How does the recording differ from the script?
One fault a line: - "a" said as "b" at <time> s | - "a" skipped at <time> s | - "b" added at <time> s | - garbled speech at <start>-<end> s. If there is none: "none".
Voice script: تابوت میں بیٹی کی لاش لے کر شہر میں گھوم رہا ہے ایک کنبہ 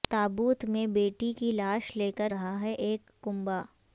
- "شہر میں گھوم" skipped at 2.3 s